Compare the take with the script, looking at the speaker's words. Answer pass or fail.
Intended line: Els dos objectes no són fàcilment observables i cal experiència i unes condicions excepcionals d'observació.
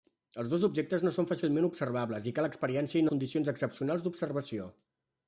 fail